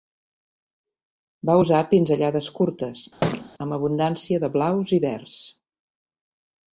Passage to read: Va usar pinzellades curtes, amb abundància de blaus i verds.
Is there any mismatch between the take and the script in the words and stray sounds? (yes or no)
yes